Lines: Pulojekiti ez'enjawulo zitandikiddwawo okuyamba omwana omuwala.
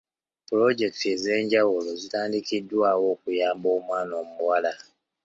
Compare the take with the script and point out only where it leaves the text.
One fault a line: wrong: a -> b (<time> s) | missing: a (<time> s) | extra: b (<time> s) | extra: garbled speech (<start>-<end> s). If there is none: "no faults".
no faults